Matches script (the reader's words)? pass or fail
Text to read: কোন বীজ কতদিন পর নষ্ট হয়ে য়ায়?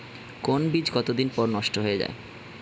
pass